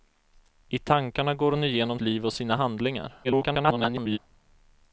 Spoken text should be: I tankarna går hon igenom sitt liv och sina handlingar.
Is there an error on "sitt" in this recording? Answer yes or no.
yes